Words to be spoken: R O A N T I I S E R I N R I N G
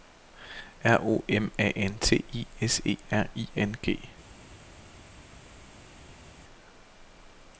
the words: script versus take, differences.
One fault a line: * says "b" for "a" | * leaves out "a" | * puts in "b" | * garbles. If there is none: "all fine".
* puts in "M"
* leaves out "I"
* leaves out "R I N"